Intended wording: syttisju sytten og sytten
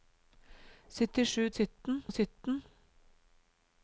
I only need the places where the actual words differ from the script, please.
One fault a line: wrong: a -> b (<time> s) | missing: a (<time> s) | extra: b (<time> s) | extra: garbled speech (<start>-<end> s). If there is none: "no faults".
no faults